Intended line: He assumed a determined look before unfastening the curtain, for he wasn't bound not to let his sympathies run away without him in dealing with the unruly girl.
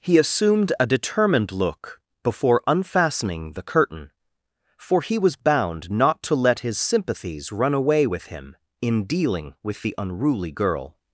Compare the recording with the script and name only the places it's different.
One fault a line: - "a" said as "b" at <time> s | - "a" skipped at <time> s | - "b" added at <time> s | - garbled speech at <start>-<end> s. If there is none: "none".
- "wasn't" said as "was" at 5.2 s
- "without" said as "with" at 8.0 s